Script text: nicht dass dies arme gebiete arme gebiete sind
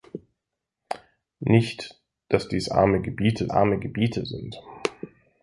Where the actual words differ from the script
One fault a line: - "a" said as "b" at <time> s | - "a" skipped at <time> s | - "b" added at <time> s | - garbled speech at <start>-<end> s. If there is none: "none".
none